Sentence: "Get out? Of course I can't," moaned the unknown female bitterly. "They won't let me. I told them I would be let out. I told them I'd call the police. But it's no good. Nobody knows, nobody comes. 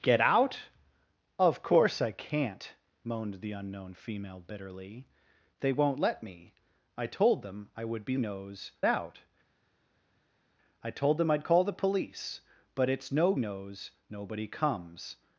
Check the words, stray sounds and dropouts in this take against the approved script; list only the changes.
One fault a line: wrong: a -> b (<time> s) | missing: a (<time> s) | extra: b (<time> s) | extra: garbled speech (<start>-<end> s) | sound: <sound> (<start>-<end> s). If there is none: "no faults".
wrong: let -> knows (8.2 s)
missing: good Nobody (13.3 s)